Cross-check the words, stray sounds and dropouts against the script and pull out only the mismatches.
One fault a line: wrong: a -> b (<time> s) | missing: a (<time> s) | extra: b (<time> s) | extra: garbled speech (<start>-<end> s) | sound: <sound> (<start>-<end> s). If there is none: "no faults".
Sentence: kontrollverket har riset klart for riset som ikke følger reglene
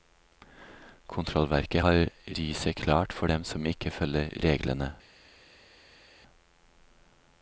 wrong: riset -> dem (3.2 s)